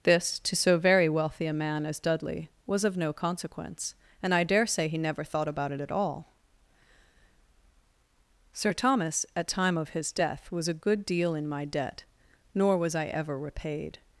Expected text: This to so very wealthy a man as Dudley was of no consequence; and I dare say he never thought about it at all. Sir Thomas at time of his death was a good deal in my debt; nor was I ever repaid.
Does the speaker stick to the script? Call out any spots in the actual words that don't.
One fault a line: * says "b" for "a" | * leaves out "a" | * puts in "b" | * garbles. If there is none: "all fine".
all fine